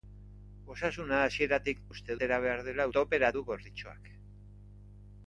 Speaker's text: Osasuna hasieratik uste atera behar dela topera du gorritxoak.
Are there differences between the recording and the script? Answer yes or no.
no